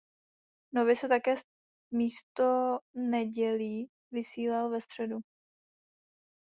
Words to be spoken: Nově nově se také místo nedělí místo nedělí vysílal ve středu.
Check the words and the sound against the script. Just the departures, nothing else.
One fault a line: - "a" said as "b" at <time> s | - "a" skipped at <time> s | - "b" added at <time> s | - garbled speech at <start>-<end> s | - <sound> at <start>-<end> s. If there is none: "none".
- "nově" skipped at 0.9 s
- "místo nedělí" skipped at 3.9 s